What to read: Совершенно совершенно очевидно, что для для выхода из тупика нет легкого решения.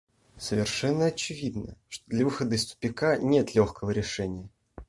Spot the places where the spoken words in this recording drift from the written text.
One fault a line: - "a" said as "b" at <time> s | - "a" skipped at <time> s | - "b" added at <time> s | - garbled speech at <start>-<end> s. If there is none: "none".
- "совершенно" skipped at 1.1 s
- "для" skipped at 2.2 s